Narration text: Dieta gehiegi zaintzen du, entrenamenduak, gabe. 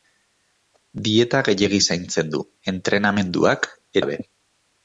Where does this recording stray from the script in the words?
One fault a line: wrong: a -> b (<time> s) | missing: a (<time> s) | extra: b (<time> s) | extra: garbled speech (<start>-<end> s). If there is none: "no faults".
no faults